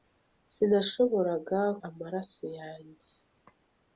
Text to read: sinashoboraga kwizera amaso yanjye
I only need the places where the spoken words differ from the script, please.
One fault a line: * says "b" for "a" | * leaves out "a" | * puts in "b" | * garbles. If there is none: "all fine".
* leaves out "kwizera"